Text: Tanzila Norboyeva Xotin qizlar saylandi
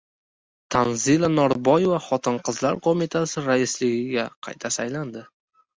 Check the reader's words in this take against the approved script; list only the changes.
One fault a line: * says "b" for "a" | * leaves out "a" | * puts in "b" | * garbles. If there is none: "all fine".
* puts in "qo‘mitasi raisligiga qayta"